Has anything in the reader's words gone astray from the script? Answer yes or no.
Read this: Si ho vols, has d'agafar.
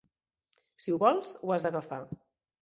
yes